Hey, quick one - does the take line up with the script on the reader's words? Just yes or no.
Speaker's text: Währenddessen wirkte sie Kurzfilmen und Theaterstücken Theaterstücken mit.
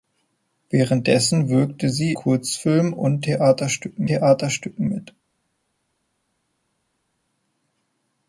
yes